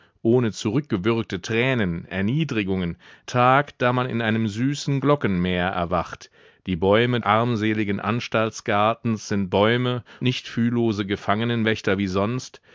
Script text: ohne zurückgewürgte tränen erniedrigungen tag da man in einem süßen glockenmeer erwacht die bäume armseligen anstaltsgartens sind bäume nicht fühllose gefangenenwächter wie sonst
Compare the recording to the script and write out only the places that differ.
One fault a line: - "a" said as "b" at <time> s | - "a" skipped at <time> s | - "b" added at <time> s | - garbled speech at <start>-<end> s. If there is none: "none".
none